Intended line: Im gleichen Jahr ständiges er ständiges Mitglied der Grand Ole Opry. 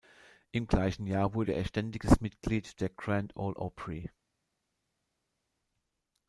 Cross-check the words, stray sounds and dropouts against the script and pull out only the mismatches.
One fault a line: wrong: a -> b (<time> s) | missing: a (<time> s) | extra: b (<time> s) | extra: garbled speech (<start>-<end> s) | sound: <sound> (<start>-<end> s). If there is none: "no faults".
wrong: ständiges -> wurde (1.4 s)